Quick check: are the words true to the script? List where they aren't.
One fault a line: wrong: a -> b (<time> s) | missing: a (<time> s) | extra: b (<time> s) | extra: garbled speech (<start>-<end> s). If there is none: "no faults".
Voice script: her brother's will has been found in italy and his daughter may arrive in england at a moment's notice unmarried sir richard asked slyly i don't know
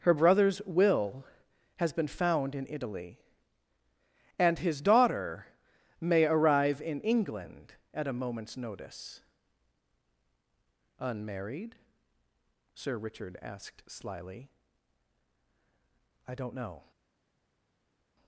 no faults